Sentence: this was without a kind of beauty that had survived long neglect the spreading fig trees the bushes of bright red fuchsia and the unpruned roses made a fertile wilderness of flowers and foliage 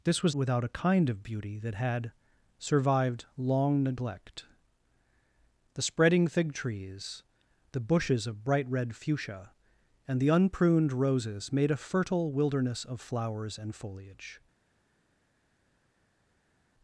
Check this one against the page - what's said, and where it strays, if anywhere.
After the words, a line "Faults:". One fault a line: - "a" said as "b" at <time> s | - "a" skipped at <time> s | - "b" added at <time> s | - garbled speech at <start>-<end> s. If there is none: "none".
this was without a kind of beauty that had survived long neglect the spreading fig trees the bushes of bright red fuchsia and the unpruned roses made a fertile wilderness of flowers and foliage
Faults:
none